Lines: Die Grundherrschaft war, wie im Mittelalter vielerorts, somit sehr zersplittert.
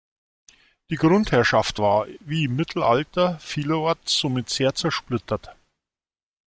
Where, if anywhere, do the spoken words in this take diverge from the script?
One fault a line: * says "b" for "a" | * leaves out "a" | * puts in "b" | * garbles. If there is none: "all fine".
all fine